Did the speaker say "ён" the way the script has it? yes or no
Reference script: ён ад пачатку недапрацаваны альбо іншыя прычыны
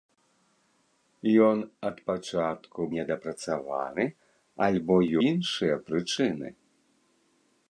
yes